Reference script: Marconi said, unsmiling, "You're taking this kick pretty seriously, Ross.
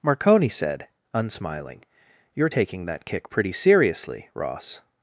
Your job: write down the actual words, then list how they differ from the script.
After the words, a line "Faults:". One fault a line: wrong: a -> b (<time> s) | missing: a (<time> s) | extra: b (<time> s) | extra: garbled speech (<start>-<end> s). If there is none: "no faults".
Marconi said, unsmiling, "You're taking that kick pretty seriously, Ross.
Faults:
wrong: this -> that (2.8 s)